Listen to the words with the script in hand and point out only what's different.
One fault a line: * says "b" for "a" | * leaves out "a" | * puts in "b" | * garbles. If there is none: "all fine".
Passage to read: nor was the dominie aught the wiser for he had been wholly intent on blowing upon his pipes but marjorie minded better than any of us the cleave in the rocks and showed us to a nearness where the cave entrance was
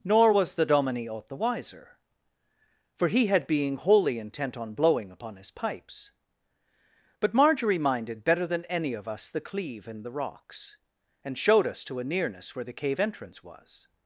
* says "being" for "been"